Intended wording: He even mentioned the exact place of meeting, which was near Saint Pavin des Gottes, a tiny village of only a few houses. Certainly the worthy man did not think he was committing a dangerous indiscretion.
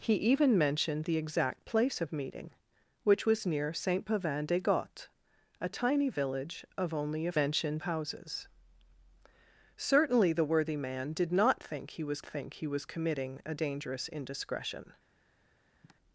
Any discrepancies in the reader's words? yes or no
yes